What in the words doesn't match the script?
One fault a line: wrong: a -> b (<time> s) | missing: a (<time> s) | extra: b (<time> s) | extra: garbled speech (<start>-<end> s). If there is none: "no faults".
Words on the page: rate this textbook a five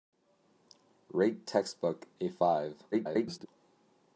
missing: this (1.4 s)
extra: garbled speech (2.9-3.5 s)